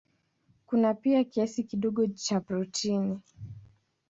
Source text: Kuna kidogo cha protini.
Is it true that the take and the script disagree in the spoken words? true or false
true